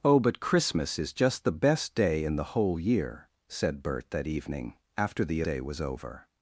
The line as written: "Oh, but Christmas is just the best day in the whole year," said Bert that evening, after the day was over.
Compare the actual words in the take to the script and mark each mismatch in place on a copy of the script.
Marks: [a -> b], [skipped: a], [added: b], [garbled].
"Oh, but Christmas is just the best day in the whole year," said Bert that evening, after the day was over.